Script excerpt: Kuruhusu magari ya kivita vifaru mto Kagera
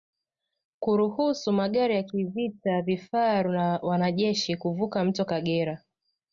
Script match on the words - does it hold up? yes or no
no